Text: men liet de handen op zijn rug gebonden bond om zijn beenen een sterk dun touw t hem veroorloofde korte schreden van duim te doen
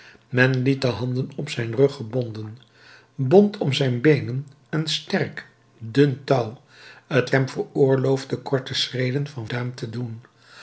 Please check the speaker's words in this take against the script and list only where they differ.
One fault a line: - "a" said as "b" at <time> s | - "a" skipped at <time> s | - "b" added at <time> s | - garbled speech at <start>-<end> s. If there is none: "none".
none